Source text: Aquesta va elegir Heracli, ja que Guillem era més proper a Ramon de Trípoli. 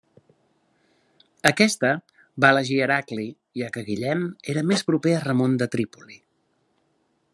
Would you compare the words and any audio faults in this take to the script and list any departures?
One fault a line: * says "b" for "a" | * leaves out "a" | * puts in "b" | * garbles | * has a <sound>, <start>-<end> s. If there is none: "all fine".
all fine